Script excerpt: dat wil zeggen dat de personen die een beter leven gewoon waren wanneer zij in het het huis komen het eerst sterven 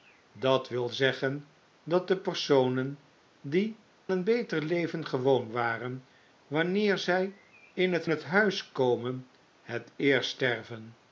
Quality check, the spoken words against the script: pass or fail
pass